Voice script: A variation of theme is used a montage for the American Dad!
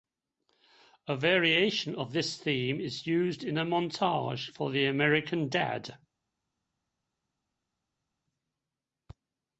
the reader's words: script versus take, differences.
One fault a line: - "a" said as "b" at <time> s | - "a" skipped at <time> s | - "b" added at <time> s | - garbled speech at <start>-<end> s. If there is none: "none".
- "this" added at 2.1 s
- "in" added at 3.4 s